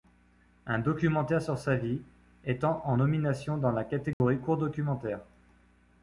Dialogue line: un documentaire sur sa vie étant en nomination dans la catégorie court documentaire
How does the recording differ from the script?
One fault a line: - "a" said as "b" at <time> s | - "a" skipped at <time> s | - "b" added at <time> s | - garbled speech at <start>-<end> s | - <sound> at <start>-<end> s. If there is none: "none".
- dropout at 4.1-4.2 s